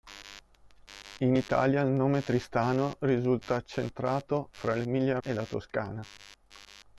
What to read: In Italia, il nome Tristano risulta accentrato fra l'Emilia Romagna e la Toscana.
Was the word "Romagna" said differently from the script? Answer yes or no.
yes